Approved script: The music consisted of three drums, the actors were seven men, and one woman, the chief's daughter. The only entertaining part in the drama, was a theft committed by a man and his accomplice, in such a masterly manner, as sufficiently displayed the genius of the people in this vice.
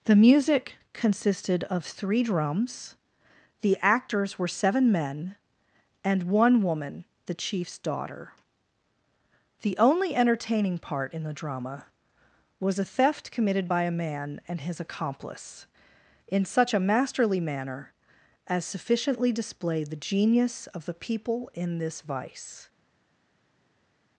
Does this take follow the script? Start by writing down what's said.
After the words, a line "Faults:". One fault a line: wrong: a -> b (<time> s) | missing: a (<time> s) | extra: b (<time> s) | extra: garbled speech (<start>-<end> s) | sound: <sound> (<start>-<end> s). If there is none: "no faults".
The music consisted of three drums, the actors were seven men, and one woman, the chief's daughter. The only entertaining part in the drama, was a theft committed by a man and his accomplice, in such a masterly manner, as sufficiently displayed the genius of the people in this vice.
Faults:
no faults